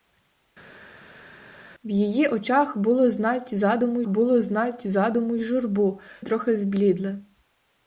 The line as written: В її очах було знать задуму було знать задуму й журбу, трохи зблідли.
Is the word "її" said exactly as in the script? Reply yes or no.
yes